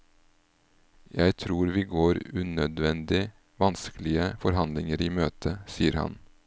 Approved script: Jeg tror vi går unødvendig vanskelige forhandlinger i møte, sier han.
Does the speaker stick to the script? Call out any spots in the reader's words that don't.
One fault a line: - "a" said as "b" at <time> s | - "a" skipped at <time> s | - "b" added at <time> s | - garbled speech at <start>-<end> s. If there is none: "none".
none